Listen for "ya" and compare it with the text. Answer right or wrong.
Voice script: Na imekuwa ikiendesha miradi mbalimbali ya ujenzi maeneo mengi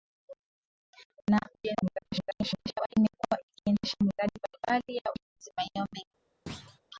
right